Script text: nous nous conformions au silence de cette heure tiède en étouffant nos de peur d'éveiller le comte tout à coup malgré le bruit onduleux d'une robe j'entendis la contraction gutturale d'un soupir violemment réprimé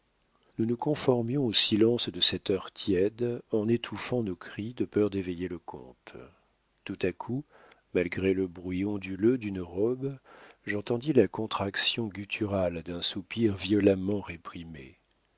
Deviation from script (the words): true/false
true